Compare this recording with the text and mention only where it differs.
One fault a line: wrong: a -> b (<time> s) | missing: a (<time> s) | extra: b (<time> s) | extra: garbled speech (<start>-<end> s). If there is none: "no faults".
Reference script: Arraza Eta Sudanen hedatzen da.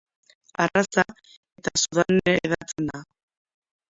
no faults